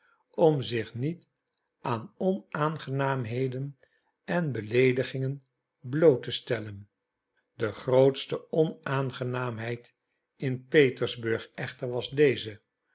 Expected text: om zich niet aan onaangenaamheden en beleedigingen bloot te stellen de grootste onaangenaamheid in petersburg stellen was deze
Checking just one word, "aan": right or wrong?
right